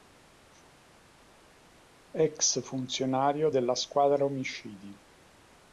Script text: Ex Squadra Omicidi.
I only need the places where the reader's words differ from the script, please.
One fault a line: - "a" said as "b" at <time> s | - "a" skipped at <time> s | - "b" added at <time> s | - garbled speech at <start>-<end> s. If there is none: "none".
- "funzionario della" added at 2.6 s